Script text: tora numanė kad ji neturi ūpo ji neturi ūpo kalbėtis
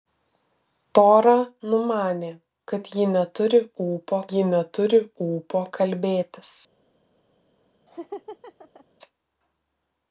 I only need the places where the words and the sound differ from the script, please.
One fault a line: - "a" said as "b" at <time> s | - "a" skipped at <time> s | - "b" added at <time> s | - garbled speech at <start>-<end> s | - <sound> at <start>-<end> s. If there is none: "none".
- laugh at 7.9-8.9 s